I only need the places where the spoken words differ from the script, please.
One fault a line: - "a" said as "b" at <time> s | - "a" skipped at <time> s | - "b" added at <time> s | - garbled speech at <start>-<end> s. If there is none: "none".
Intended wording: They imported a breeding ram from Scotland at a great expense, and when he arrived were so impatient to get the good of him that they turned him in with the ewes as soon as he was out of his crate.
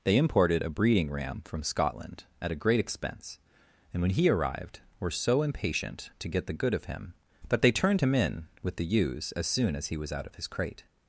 none